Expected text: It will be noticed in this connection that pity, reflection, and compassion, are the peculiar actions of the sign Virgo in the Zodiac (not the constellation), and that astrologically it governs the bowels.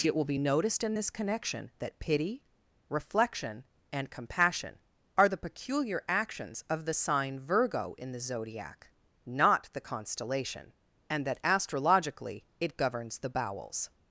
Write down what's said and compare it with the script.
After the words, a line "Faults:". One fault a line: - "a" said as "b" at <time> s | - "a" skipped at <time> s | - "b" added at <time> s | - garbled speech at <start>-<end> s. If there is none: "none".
It will be noticed in this connection that pity, reflection, and compassion, are the peculiar actions of the sign Virgo in the Zodiac (not the constellation), and that astrologically it governs the bowels.
Faults:
none